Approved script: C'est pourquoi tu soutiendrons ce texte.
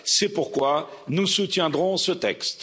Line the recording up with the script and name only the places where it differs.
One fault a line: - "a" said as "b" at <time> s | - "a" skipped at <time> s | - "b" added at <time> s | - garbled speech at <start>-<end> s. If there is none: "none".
- "tu" said as "nous" at 1.1 s